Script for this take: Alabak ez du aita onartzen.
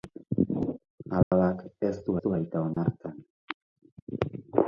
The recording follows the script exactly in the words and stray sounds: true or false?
false